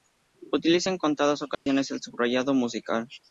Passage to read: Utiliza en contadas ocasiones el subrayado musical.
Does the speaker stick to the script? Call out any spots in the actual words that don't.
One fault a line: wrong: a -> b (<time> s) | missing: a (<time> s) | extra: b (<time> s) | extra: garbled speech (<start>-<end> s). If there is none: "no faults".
no faults